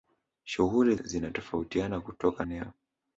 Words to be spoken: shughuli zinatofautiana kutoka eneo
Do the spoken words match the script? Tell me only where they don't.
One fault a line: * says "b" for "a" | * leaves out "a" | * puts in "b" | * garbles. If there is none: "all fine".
all fine